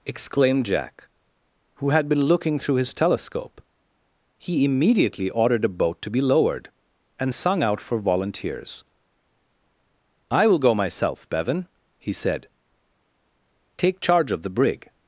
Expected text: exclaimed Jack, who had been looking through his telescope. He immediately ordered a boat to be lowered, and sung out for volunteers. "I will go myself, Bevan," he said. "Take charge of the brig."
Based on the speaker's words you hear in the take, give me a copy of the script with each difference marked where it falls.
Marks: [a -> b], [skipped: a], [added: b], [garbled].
exclaimed Jack, who had been looking through his telescope. He immediately ordered a boat to be lowered, and sung out for volunteers. "I will go myself, Bevan," he said. "Take charge of the brig."